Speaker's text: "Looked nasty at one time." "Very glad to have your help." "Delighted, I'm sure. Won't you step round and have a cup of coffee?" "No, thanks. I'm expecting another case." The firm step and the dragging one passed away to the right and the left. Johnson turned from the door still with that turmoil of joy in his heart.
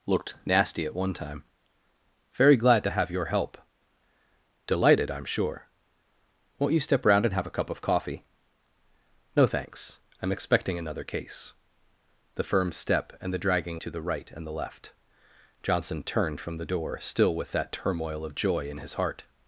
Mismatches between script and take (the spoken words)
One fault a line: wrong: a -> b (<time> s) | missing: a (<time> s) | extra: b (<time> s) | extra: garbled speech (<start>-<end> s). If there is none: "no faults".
missing: one passed away (13.8 s)